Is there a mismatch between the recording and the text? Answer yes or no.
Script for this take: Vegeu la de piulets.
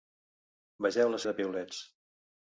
no